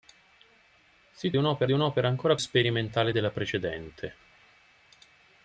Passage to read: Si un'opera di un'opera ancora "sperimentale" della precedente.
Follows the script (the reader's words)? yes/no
yes